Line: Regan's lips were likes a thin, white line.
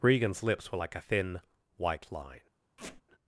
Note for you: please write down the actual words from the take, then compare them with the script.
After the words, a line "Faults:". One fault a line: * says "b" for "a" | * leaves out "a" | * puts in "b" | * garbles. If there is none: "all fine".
Regan's lips were like a thin, white line.
Faults:
* says "like" for "likes"